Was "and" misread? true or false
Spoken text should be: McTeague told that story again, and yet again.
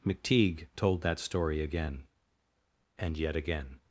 false